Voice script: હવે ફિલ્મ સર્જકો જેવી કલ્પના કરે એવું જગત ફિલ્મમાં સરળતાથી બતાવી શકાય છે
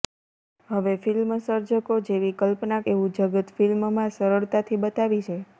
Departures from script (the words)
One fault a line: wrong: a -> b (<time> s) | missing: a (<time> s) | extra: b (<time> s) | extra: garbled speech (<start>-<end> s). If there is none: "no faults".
missing: કરે (2.8 s)
missing: શકાય (5.2 s)